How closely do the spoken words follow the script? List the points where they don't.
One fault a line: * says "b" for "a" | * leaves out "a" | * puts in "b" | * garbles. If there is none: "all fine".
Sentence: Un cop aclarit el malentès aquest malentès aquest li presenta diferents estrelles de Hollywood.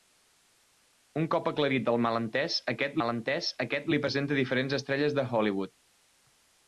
all fine